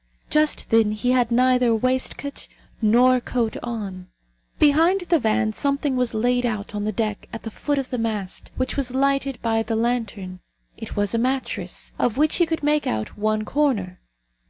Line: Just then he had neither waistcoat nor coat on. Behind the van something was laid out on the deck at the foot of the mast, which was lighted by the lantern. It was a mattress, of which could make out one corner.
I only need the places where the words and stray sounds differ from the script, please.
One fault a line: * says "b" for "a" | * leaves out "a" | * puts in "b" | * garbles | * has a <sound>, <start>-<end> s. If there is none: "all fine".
* puts in "he"